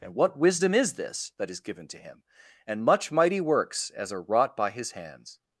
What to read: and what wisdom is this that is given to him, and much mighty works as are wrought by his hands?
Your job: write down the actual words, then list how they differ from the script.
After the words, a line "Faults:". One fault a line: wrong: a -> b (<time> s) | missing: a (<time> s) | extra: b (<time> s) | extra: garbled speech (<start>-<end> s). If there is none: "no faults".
and what wisdom is this that is given to him, and much mighty works as are wrought by his hands?
Faults:
no faults